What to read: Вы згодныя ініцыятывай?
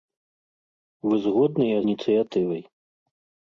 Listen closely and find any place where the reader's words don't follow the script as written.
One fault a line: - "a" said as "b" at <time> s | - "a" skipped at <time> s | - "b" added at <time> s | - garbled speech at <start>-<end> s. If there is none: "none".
none